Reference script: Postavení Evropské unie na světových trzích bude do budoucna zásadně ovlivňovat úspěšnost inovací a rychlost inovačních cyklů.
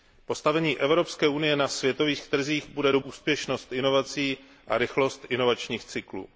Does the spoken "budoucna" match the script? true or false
false